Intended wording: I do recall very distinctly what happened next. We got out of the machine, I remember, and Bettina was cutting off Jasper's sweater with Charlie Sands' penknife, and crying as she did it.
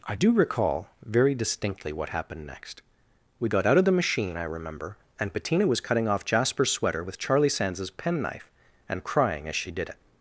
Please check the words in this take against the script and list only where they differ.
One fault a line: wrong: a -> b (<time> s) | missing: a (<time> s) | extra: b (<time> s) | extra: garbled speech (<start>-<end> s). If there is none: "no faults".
no faults